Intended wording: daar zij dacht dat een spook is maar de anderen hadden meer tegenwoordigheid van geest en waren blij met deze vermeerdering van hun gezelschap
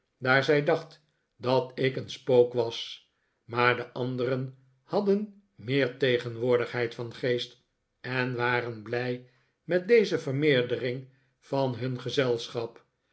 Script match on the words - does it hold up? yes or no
no